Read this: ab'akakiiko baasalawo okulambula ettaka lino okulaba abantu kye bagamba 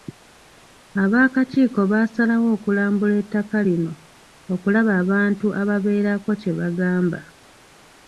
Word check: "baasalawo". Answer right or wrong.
right